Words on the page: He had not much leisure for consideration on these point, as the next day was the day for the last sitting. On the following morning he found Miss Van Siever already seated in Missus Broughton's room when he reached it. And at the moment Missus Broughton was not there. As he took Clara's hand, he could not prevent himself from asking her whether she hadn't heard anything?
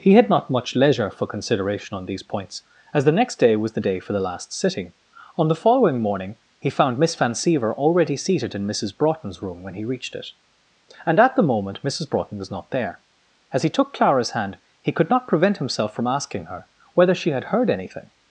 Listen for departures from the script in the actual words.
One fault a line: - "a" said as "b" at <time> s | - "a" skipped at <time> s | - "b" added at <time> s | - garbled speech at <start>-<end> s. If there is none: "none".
- "point" said as "points" at 2.2 s
- "hadn't" said as "had" at 17.3 s